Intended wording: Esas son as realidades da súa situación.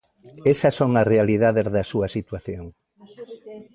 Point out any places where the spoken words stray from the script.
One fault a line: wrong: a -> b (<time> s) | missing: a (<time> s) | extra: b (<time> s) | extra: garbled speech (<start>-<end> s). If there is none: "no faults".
no faults